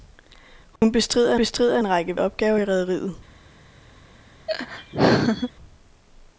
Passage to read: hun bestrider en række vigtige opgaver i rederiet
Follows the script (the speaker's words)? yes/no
no